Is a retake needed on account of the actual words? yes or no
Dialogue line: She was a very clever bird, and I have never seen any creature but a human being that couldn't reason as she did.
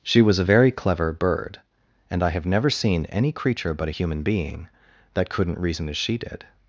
no